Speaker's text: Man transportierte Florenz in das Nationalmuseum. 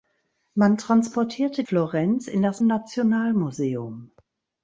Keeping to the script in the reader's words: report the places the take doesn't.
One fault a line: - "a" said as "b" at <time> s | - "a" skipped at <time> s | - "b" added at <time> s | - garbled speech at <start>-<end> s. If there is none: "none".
none